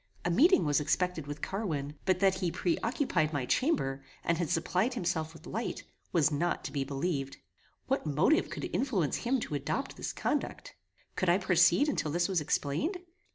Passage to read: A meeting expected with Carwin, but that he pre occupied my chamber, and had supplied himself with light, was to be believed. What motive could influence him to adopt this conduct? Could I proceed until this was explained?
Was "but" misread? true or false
false